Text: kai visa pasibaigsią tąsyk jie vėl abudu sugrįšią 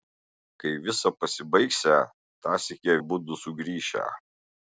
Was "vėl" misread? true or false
true